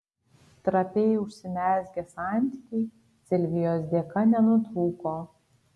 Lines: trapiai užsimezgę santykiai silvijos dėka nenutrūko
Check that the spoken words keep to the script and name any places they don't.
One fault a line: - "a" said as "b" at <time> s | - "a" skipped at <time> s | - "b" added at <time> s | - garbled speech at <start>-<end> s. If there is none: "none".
none